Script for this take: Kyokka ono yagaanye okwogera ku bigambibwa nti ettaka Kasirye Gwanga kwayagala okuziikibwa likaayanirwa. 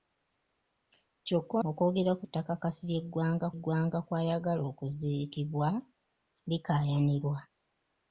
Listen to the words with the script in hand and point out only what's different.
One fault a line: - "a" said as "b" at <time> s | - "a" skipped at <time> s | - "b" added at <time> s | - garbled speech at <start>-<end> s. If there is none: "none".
- "ono yagaanye" skipped at 1.6 s
- "bigambibwa nti" skipped at 2.2 s
- "Gwanga" added at 3.6 s